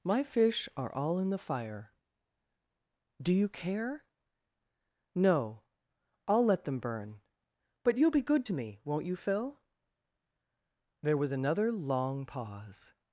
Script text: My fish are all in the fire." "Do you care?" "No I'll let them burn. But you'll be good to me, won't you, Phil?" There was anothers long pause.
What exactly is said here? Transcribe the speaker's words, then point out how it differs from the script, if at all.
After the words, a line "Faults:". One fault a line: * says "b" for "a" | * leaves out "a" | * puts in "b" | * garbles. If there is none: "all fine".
My fish are all in the fire." "Do you care?" "No I'll let them burn. But you'll be good to me, won't you, Phil?" There was another long pause.
Faults:
* says "another" for "anothers"